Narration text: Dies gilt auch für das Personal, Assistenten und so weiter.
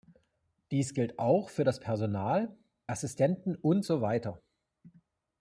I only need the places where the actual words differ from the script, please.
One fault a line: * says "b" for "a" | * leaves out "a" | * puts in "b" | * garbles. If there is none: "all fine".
all fine